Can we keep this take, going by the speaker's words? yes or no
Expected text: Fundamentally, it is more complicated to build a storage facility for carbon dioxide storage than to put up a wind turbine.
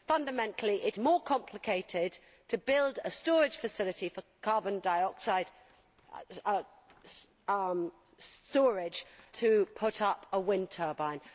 no